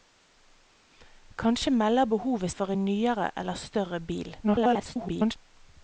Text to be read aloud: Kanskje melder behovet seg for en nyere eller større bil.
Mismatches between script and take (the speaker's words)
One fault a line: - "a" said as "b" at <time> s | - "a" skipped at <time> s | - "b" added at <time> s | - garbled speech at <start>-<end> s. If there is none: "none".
- "seg" skipped at 2.5 s
- garbled speech at 4.4-5.4 s